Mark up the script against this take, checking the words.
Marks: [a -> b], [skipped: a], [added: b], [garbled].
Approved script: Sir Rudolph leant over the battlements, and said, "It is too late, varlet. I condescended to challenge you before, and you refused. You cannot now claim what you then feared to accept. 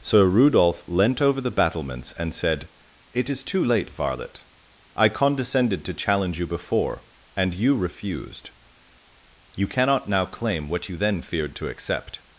Sir Rudolph leant over the battlements, and said, "It is too late, varlet. I condescended to challenge you before, and you refused. You cannot now claim what you then feared to accept.